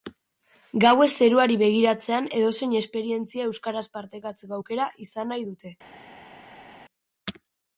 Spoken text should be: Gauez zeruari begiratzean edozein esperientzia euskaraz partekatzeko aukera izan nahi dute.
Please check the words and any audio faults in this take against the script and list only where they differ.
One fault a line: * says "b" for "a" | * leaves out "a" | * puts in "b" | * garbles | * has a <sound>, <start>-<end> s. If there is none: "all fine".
all fine